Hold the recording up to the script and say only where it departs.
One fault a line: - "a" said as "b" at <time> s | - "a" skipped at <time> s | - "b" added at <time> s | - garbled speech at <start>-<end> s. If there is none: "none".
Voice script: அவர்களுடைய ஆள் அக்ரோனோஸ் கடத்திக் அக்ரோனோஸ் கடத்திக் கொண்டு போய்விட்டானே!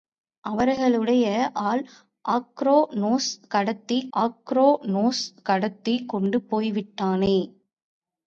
none